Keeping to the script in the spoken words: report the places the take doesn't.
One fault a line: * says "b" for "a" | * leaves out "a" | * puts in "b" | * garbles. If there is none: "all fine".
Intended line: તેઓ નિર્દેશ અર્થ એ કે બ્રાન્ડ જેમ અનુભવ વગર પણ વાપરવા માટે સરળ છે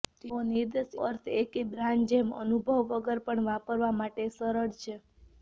all fine